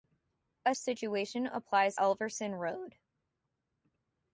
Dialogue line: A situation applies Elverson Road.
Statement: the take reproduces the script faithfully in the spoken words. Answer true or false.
true